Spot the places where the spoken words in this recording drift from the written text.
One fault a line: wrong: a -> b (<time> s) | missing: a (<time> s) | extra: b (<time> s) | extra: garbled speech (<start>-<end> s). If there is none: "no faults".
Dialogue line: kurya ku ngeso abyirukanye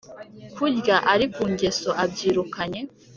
extra: ari (1.1 s)